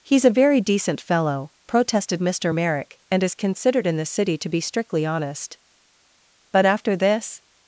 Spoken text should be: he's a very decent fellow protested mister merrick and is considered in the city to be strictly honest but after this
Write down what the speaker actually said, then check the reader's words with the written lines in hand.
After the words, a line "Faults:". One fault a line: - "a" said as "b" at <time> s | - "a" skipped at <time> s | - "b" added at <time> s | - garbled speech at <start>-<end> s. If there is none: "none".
he's a very decent fellow protested mister merrick and is considered in the city to be strictly honest but after this
Faults:
none